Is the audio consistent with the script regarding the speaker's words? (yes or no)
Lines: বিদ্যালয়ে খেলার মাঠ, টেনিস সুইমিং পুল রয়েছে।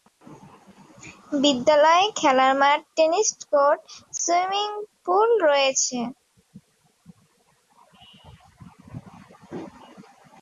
no